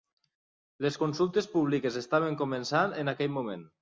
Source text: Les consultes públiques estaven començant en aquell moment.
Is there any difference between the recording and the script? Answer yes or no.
no